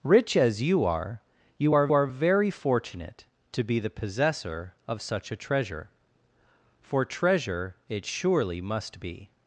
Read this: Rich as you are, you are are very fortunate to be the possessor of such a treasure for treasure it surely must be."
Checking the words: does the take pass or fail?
pass